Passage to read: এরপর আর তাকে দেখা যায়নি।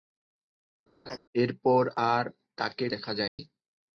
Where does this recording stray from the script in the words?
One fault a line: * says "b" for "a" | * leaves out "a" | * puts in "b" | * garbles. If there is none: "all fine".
all fine